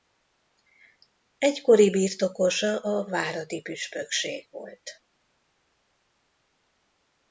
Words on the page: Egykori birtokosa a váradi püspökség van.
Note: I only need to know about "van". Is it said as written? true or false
false